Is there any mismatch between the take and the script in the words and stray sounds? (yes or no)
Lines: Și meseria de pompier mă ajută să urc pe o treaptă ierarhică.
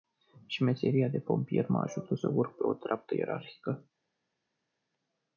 no